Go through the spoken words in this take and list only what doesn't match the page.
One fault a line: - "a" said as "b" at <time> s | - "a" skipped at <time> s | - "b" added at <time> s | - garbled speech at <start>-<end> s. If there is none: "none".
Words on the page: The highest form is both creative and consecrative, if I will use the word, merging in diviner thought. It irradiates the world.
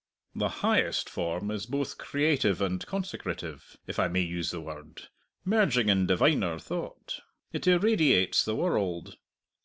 - "will" said as "may" at 4.1 s